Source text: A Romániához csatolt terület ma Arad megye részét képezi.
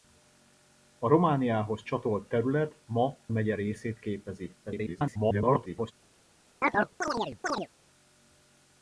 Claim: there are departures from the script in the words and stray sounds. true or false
true